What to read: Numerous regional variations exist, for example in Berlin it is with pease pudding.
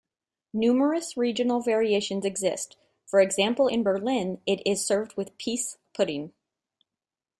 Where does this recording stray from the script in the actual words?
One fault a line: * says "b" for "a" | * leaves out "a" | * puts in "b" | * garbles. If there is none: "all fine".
* puts in "served"